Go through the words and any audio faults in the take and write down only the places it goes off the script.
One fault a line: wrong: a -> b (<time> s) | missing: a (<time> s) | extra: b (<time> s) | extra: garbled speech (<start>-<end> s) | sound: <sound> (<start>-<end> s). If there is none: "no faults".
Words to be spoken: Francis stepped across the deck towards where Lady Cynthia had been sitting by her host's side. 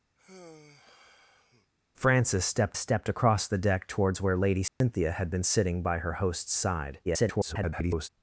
sound: sigh (0.2-1.7 s)
extra: stepped (2.8 s)
sound: dropout (4.7-4.8 s)
extra: garbled speech (7.0-8.1 s)